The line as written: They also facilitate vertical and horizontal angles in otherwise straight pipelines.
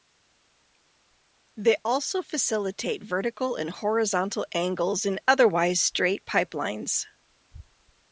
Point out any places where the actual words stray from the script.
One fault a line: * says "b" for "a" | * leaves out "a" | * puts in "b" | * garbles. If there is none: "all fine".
all fine